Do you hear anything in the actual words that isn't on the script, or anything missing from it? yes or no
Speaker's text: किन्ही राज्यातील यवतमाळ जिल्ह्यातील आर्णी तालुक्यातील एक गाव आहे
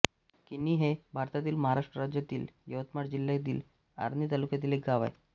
yes